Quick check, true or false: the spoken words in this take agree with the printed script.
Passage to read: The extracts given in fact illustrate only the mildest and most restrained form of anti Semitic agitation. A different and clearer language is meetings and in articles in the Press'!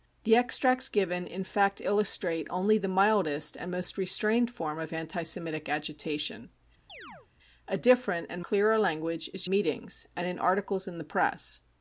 true